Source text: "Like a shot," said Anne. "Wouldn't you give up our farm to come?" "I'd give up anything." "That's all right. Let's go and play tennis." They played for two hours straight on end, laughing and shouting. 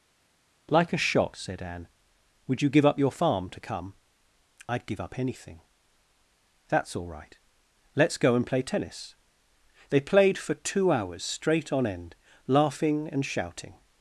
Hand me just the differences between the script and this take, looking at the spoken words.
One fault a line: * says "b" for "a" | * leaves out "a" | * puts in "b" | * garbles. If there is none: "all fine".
* says "Would" for "Wouldn't"
* says "your" for "our"